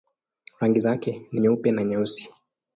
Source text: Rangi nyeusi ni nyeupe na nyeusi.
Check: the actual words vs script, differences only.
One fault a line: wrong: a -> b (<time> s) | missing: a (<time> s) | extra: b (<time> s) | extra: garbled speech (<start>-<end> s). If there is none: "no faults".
wrong: nyeusi -> zake (0.8 s)